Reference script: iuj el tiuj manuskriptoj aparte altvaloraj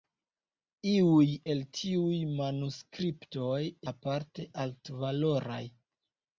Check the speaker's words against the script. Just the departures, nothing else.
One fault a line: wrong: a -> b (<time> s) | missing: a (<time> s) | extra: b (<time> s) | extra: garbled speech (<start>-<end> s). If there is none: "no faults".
no faults